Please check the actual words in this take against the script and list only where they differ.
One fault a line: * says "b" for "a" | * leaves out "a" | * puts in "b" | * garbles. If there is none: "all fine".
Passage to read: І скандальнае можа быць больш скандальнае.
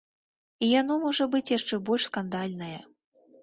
* says "яно" for "скандальнае"
* puts in "яшчэ"